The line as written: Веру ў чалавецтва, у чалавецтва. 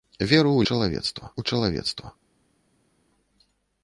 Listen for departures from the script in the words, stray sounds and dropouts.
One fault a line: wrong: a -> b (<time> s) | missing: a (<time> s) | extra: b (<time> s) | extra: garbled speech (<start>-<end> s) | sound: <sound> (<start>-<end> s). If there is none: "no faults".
no faults